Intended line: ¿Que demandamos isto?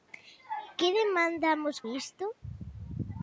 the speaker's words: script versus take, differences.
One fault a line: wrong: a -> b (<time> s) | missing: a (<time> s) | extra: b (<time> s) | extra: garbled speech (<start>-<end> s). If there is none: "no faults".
no faults